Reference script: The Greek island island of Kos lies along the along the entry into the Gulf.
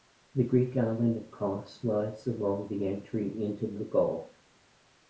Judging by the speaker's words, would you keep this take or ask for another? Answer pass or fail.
fail